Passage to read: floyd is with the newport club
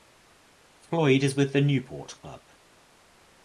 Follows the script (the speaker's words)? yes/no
yes